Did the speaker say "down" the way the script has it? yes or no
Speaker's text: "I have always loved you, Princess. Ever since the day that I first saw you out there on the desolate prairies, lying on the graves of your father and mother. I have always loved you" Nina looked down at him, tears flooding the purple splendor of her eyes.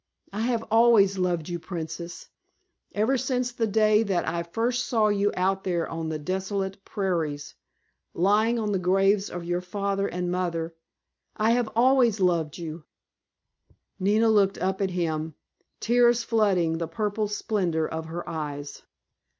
no